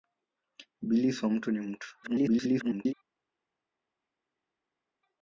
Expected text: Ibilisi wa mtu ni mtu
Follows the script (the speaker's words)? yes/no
no